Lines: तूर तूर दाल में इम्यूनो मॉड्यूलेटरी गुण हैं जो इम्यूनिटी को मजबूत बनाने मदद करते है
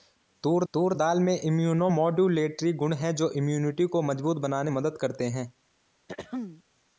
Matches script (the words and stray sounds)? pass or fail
fail